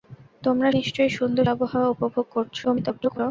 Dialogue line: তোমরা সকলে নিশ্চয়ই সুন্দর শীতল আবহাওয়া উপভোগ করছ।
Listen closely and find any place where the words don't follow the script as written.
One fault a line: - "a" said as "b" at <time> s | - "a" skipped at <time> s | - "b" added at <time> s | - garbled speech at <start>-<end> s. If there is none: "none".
- "সকলে" skipped at 0.7 s
- "শীতল" skipped at 1.5 s
- garbled speech at 2.6-3.2 s